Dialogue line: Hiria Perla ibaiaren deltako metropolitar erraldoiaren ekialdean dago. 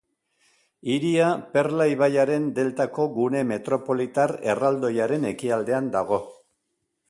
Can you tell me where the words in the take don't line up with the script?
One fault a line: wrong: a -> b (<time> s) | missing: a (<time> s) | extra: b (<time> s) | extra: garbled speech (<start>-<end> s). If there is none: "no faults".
extra: gune (3.2 s)